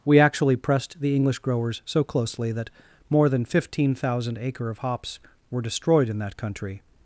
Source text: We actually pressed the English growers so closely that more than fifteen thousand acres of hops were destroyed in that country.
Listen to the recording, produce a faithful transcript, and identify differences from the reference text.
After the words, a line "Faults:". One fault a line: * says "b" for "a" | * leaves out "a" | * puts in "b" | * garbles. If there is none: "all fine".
We actually pressed the English growers so closely that more than fifteen thousand acre of hops were destroyed in that country.
Faults:
* says "acre" for "acres"